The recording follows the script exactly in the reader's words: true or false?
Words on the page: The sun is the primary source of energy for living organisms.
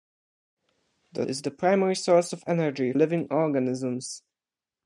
false